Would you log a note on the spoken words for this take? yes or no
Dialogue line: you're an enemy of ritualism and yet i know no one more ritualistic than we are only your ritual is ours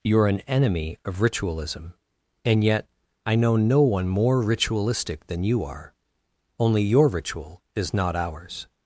yes